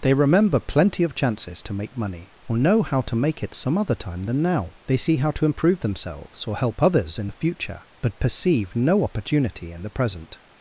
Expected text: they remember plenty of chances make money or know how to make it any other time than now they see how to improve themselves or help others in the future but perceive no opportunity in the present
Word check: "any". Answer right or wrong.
wrong